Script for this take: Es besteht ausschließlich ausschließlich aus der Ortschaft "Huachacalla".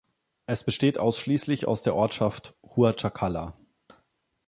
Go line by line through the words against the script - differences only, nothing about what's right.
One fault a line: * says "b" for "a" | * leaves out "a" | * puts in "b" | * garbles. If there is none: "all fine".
* leaves out "ausschließlich"